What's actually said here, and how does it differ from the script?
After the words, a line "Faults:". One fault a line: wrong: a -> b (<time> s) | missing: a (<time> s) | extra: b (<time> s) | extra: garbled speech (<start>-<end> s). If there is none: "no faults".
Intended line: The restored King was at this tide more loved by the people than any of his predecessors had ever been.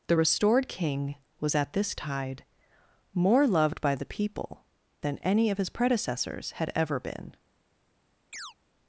The restored King was at this tide more loved by the people than any of his predecessors had ever been.
Faults:
no faults